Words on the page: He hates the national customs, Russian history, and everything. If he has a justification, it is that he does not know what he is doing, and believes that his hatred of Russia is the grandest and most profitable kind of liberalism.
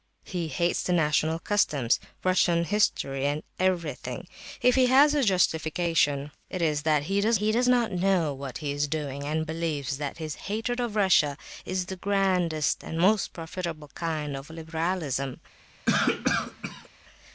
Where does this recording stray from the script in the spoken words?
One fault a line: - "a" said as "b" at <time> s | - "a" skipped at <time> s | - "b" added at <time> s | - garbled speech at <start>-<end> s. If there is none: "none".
- "he does" added at 7.4 s